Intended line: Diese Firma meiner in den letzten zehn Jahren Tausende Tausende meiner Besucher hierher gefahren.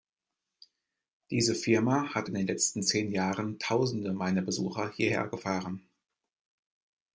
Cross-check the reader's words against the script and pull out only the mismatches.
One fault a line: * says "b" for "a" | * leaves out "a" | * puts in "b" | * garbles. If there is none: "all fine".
* says "hat" for "meiner"
* leaves out "Tausende"